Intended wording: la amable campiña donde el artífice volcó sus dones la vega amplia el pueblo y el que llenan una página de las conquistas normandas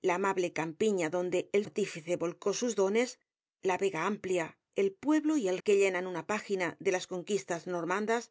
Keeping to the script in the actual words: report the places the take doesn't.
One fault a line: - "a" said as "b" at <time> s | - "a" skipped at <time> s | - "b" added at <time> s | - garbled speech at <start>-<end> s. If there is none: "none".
none